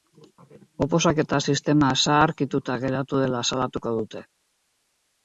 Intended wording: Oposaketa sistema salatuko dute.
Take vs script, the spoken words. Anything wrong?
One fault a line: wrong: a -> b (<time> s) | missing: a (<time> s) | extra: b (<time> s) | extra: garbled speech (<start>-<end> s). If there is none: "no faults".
extra: zaharkituta geratu dela (2.0 s)